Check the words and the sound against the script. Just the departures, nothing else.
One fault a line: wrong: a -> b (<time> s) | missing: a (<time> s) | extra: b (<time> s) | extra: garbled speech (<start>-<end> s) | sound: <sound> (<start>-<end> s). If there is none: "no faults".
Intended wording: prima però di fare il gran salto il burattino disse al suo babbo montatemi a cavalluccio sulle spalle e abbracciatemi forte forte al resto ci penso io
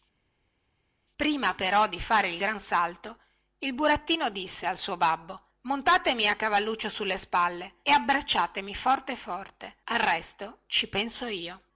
no faults